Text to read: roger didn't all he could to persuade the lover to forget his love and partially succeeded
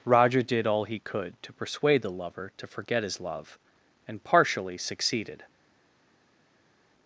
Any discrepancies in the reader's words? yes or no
yes